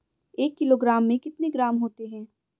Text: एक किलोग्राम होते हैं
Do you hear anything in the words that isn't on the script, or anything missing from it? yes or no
yes